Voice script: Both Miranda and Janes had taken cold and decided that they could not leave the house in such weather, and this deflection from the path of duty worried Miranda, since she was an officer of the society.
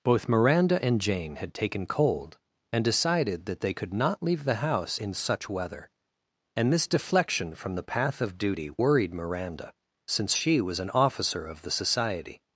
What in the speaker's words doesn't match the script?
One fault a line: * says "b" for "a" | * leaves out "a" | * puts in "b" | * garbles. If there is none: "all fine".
* says "Jane" for "Janes"